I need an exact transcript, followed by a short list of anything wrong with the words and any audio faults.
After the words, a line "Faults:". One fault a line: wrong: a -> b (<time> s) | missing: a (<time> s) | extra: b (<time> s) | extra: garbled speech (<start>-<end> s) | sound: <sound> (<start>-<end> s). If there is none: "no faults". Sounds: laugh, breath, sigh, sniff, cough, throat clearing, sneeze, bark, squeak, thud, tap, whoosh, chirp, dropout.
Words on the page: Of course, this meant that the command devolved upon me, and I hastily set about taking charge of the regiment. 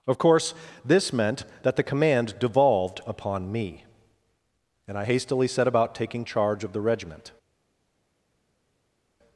Of course, this meant that the command devolved upon me, and I hastily set about taking charge of the regiment.
Faults:
no faults